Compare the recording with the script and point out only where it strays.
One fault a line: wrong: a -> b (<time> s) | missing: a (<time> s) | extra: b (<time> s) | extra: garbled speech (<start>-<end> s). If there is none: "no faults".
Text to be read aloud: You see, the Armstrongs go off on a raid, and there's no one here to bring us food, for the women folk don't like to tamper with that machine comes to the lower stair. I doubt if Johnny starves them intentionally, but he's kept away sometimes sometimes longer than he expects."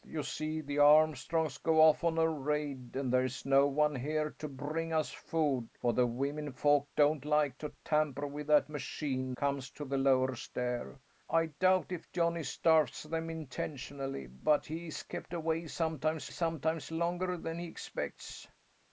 no faults